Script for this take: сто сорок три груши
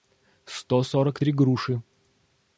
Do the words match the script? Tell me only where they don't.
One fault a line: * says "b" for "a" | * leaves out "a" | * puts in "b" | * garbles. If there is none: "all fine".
all fine